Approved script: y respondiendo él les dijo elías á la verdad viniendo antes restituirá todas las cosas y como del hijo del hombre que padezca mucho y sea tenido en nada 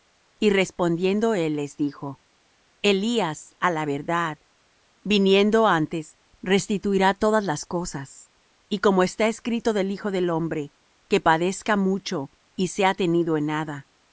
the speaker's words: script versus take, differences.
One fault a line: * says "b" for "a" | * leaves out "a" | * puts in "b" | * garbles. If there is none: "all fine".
* puts in "está escrito"